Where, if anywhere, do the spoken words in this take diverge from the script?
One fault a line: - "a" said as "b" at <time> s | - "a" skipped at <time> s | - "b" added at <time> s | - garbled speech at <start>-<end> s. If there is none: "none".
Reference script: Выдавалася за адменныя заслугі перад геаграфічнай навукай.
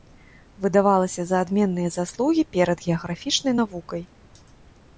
none